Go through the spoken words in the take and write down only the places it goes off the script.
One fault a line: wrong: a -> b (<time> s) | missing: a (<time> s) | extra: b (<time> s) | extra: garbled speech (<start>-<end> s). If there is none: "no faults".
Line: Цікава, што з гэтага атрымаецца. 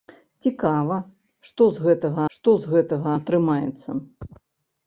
extra: што з гэтага (2.4 s)